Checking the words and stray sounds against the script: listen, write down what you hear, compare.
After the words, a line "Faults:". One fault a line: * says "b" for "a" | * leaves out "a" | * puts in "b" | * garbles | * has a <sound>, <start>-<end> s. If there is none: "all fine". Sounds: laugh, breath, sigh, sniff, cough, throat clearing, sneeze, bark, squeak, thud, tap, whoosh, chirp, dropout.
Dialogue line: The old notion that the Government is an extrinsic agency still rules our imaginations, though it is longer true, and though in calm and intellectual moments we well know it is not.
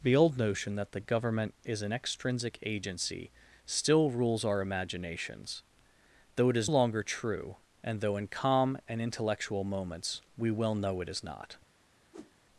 The old notion that the Government is an extrinsic agency still rules our imaginations, though it is longer true, and though in calm and intellectual moments we well know it is not.
Faults:
* has a whoosh, 12.1-12.3 s